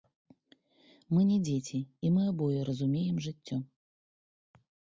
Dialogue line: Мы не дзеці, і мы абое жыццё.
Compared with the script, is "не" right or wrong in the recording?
right